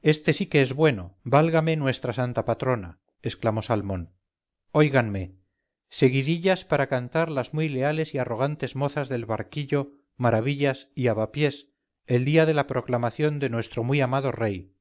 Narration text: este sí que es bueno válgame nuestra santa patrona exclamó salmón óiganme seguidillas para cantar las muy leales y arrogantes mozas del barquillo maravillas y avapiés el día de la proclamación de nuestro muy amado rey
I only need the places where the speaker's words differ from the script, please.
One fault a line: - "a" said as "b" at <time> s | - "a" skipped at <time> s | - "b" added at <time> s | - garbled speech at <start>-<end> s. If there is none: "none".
none